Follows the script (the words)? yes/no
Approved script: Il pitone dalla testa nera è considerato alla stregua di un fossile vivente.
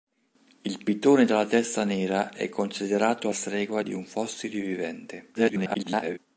no